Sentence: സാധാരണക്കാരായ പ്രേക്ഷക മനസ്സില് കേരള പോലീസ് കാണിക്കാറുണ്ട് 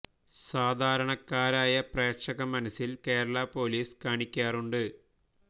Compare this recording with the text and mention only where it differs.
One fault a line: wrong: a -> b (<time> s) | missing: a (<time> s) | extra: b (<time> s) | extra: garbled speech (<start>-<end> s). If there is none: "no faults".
no faults